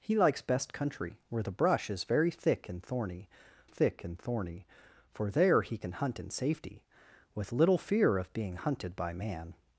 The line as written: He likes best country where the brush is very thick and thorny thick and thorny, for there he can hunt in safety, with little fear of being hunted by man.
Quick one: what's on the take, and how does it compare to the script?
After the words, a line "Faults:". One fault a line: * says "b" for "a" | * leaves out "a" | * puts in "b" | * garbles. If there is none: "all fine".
He likes best country where the brush is very thick and thorny thick and thorny, for there he can hunt in safety, with little fear of being hunted by man.
Faults:
all fine